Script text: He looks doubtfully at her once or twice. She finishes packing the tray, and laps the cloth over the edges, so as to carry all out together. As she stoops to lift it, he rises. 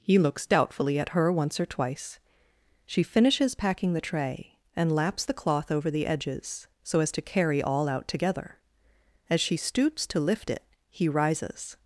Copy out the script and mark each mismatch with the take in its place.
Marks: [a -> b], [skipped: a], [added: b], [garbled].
He looks doubtfully at her once or twice. She finishes packing the tray, and laps the cloth over the edges, so as to carry all out together. As she stoops to lift it, he rises.